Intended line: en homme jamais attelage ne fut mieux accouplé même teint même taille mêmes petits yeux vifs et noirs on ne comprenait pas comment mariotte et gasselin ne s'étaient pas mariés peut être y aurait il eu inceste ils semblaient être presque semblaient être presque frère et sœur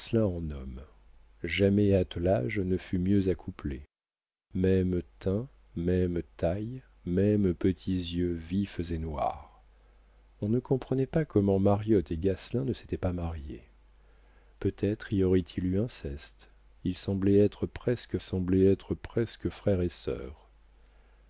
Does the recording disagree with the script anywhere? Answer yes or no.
no